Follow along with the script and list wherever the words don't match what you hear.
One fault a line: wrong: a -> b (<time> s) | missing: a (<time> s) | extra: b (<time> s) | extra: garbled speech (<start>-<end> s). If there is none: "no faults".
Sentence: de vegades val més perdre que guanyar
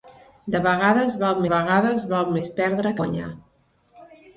extra: vegades val (1.5 s)
missing: que (3.0 s)